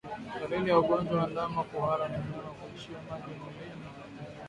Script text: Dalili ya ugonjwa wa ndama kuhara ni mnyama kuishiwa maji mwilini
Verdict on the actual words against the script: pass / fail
pass